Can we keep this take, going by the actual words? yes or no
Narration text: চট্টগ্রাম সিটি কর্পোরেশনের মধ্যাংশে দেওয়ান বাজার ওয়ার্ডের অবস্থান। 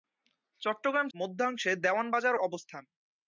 no